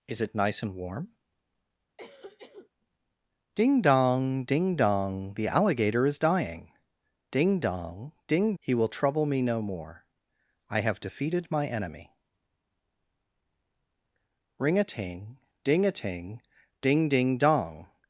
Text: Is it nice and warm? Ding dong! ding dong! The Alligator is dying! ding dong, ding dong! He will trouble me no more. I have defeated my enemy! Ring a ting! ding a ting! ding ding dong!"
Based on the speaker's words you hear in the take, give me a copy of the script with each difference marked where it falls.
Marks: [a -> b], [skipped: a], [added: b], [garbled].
Is it nice and warm? Ding dong! ding dong! The Alligator is dying! ding dong, ding [skipped: dong!] He will trouble me no more. I have defeated my enemy! Ring a ting! ding a ting! ding ding dong!"